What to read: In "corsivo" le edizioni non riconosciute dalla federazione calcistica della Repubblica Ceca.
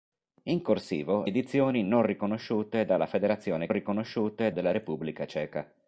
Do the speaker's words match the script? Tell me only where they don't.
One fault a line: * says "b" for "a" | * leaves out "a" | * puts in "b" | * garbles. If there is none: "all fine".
* leaves out "le"
* says "riconosciute" for "calcistica"